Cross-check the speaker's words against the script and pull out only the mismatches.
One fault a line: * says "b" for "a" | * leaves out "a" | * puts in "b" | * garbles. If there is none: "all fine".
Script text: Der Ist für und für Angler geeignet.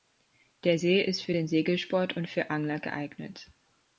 * puts in "See"
* puts in "den Segelsport"